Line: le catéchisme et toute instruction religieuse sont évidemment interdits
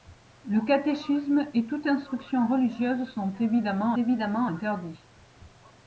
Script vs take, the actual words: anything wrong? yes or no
yes